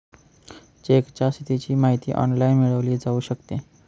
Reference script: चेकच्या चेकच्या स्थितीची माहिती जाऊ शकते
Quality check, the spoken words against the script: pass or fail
fail